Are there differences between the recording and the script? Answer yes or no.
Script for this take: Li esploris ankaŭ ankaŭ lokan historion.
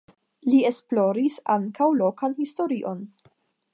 yes